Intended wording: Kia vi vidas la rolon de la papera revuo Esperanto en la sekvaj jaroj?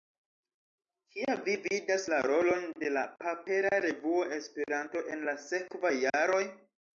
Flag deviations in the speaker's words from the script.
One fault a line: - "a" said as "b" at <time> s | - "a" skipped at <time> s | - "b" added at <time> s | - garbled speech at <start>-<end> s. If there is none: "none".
none